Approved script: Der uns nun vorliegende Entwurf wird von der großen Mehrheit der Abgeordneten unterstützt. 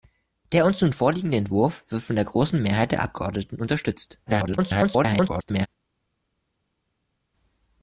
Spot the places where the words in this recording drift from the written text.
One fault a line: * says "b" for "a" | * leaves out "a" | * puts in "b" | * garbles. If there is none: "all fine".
* garbles